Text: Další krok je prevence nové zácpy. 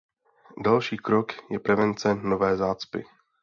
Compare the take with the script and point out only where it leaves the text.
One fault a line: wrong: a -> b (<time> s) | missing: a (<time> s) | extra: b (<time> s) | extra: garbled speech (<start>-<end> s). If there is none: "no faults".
no faults